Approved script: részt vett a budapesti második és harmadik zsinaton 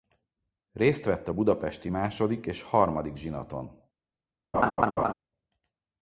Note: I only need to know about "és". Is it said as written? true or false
true